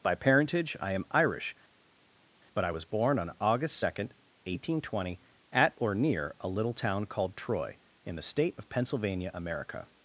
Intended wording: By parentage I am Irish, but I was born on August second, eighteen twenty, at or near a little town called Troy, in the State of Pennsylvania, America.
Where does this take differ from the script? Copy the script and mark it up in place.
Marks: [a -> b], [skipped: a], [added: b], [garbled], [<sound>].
By parentage I am Irish, but I was born on August second, eighteen twenty, at or near a little town called Troy, in the State of Pennsylvania, America.